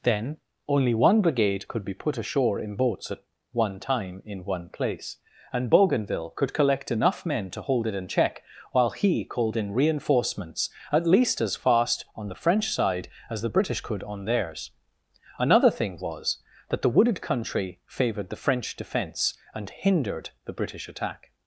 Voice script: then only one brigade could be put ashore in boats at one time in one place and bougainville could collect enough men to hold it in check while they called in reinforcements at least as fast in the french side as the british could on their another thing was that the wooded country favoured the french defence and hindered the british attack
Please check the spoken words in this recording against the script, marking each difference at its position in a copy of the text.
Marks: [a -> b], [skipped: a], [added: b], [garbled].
then only one brigade could be put ashore in boats at one time in one place and bougainville could collect enough men to hold it in check while [they -> he] called in reinforcements at least as fast [in -> on] the french side as the british could on [their -> theirs] another thing was that the wooded country favoured the french defence and hindered the british attack